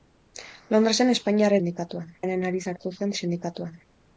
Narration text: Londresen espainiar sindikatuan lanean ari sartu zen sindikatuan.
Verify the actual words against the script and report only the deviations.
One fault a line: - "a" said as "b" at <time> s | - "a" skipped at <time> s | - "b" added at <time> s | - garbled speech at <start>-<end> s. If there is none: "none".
none